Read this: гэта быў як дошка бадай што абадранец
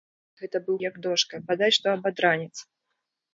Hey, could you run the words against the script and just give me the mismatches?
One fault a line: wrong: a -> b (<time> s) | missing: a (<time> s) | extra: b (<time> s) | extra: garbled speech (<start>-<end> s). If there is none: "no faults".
no faults